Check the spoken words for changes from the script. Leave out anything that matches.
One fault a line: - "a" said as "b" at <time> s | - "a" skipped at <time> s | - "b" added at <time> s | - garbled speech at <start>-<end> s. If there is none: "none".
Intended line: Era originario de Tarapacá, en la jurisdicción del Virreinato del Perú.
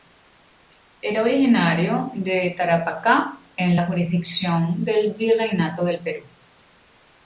none